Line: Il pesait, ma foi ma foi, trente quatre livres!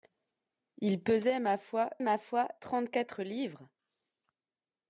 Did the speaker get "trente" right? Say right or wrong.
right